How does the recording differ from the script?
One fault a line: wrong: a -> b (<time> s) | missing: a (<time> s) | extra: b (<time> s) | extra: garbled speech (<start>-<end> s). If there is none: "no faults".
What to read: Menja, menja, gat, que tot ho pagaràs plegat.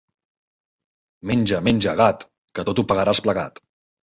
no faults